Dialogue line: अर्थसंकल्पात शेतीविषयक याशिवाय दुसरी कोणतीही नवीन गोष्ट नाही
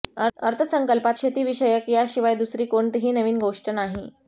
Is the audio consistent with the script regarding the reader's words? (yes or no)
yes